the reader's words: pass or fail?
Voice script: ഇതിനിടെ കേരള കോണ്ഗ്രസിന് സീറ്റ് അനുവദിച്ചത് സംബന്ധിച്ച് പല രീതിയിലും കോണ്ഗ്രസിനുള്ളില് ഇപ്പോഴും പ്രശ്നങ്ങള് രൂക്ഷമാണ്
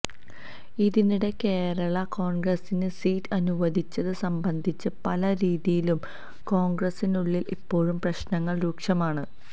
pass